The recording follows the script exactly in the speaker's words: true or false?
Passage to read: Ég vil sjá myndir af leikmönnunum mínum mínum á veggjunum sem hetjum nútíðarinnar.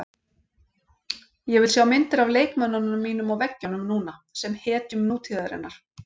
false